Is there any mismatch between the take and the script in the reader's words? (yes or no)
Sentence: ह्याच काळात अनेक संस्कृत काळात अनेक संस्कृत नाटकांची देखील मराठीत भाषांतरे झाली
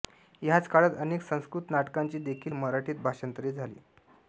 yes